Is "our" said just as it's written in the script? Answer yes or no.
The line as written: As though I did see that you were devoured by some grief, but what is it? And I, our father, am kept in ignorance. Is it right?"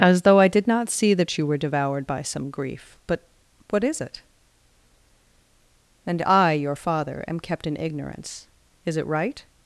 no